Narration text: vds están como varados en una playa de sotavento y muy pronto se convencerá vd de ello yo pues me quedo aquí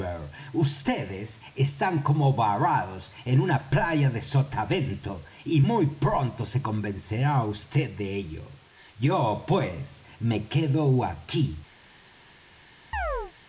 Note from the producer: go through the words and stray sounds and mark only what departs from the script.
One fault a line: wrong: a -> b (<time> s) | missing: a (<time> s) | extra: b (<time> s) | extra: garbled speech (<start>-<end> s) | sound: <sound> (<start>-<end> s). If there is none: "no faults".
sound: chirp (12.9-13.3 s)